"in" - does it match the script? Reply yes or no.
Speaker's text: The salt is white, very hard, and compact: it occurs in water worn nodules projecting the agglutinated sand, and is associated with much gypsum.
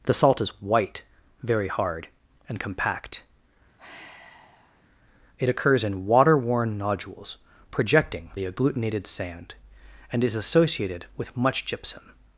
yes